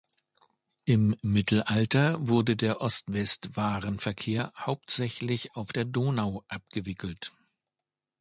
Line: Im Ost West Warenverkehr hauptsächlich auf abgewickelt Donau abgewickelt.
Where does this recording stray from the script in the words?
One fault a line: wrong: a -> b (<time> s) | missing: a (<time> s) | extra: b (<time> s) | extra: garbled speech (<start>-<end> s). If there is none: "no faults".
extra: Mittelalter wurde der (1.2 s)
wrong: abgewickelt -> der (5.7 s)